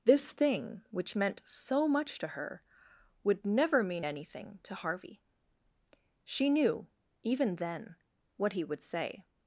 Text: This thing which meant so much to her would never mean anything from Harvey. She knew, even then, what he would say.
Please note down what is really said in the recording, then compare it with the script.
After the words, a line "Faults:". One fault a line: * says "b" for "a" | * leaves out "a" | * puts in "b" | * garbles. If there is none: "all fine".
This thing which meant so much to her would never mean anything to Harvey. She knew, even then, what he would say.
Faults:
* says "to" for "from"